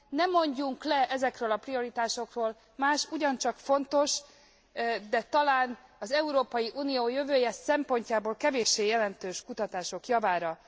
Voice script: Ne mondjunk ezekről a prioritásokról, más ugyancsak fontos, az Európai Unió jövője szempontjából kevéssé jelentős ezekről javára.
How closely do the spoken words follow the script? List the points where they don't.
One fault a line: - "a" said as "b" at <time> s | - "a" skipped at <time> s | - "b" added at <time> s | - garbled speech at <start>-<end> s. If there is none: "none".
- "le" added at 0.8 s
- "de talán" added at 5.1 s
- "ezekről" said as "kutatások" at 9.4 s